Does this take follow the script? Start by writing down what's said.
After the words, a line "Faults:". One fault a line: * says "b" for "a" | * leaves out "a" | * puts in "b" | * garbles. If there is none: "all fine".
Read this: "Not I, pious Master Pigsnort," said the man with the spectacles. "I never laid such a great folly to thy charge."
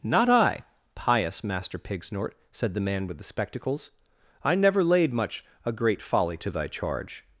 "Not I, pious Master Pigsnort," said the man with the spectacles. "I never laid much a great folly to thy charge."
Faults:
* says "much" for "such"